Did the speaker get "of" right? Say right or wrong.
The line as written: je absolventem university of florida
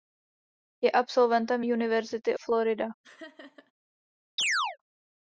wrong